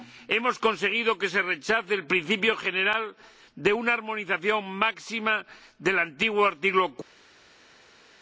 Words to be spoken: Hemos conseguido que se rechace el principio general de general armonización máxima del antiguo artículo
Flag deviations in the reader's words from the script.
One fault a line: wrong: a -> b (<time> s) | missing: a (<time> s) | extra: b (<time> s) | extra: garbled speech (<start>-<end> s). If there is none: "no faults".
wrong: general -> una (3.7 s)